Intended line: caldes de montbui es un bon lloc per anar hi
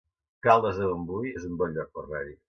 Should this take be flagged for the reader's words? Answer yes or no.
no